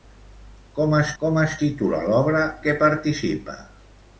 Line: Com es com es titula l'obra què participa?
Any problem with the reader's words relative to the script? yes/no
no